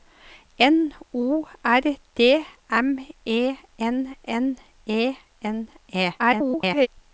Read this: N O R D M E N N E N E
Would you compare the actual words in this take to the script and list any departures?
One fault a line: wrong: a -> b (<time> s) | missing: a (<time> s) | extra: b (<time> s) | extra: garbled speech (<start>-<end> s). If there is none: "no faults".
extra: garbled speech (6.2-6.9 s)